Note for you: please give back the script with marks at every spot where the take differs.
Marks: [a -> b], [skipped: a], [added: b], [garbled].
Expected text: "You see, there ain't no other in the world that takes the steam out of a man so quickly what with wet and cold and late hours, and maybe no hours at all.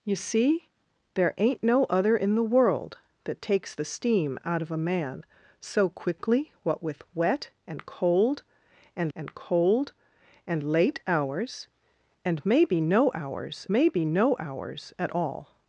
"You see, there ain't no other in the world that takes the steam out of a man so quickly what with wet and cold and [added: and cold and] late hours, and maybe no hours [added: maybe no hours] at all.